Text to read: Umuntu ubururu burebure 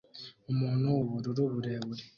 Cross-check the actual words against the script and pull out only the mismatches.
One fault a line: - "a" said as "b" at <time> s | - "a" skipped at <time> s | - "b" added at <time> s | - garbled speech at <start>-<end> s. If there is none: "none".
none